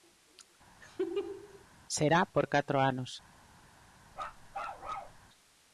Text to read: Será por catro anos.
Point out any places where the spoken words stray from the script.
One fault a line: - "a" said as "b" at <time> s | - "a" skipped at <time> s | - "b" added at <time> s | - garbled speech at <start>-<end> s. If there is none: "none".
none